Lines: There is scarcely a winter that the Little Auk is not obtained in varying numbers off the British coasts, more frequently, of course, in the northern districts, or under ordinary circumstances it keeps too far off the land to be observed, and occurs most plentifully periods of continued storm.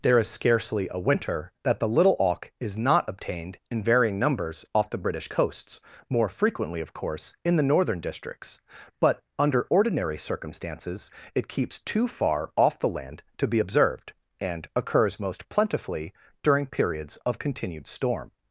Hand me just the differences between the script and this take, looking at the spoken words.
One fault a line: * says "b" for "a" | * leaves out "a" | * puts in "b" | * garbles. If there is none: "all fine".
* says "but" for "or"
* puts in "during"